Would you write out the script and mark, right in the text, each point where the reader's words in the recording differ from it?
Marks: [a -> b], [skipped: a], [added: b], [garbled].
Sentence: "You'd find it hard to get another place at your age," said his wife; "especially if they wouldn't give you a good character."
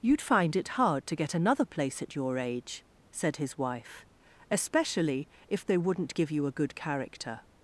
"You'd find it hard to get another place at your age," said his wife; "especially if they wouldn't give you a good character."